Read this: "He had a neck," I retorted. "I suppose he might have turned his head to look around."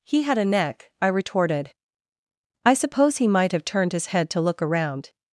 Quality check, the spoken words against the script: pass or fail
pass